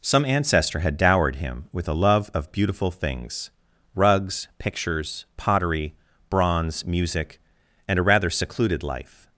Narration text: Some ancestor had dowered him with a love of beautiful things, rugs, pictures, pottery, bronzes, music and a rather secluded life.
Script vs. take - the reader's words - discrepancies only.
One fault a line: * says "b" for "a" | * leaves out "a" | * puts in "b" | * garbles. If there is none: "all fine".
* says "bronze" for "bronzes"